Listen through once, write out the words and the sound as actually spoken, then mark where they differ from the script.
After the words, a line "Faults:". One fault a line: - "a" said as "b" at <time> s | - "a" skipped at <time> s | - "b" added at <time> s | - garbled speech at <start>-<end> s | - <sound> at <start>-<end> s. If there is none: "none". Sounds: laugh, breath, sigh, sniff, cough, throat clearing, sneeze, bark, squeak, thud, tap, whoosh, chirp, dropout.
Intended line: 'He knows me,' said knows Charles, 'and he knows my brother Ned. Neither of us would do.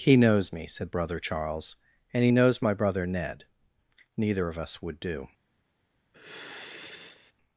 'He knows me,' said brother Charles, 'and he knows my brother Ned. Neither of us would do.
Faults:
- "knows" said as "brother" at 0.9 s
- sigh at 6.1-7.3 s